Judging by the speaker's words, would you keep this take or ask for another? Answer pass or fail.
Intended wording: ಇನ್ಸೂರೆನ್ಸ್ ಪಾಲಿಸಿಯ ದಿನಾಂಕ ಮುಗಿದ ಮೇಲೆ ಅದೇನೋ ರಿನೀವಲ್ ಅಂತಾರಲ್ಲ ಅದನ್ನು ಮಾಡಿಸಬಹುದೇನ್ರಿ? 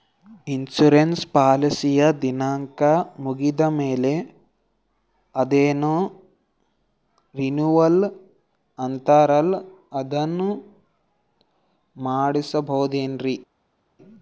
pass